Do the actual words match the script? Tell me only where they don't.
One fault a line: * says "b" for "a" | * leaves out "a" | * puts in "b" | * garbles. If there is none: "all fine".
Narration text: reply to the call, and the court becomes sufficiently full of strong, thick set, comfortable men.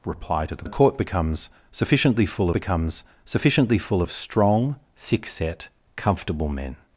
* says "the court becomes sufficiently full" for "call and the court"